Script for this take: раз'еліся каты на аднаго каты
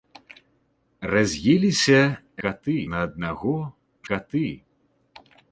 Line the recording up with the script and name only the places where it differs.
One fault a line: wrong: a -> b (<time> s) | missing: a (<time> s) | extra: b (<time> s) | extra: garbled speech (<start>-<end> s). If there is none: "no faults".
no faults